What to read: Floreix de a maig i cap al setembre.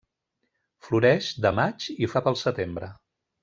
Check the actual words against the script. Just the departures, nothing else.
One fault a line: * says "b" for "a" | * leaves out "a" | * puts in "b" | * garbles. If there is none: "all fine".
all fine